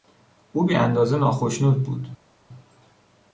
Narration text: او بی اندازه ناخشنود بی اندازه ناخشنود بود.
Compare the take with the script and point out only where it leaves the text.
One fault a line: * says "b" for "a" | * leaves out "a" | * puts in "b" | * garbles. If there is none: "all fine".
* leaves out "بی اندازه ناخشنود"